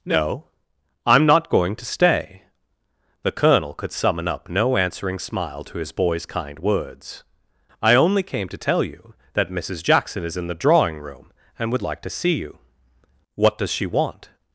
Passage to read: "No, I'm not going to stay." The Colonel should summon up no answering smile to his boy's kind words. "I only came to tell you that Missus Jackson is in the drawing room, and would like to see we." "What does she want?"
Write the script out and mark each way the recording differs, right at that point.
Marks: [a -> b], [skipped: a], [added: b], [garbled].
"No, I'm not going to stay." The Colonel [should -> could] summon up no answering smile to his boy's kind words. "I only came to tell you that Missus Jackson is in the drawing room, and would like to see [we." -> you] "What does she want?"